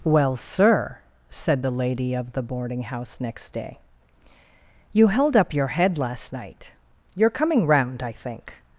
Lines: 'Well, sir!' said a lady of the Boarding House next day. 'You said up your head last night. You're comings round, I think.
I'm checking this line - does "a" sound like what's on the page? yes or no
no